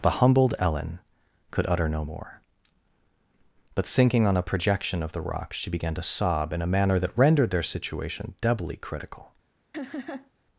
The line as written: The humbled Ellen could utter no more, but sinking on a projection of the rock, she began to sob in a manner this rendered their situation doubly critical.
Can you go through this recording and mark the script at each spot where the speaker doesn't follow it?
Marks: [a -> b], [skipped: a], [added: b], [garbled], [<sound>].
The humbled Ellen could utter no more, but sinking on a projection of the rock, she began to sob in a manner [this -> that] rendered their situation doubly critical. [laugh]